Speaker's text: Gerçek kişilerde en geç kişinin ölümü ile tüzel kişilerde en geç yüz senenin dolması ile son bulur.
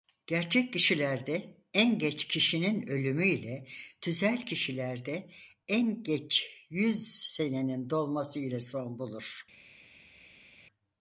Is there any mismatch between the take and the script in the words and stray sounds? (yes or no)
no